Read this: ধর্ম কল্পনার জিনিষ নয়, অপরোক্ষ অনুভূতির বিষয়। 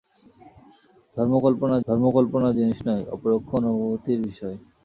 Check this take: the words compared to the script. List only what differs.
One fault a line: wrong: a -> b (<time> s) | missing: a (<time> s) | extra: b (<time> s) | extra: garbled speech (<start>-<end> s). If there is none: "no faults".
extra: ধর্ম কল্পনার (1.9 s)